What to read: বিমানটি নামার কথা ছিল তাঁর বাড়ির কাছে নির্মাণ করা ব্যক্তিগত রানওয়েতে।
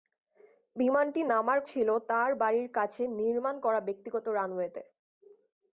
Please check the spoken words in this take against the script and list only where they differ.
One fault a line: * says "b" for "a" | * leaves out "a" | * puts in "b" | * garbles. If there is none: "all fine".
* leaves out "কথা"